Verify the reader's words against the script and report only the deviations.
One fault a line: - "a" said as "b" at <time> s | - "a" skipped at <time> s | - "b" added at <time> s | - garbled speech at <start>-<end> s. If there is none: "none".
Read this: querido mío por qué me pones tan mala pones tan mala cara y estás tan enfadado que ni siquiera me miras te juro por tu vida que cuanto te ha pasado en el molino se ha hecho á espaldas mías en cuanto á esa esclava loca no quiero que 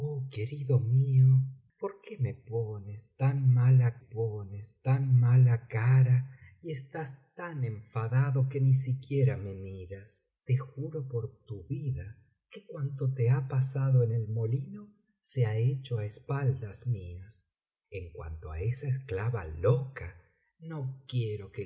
none